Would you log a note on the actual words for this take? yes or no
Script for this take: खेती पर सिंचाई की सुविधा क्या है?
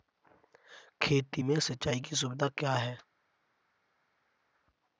yes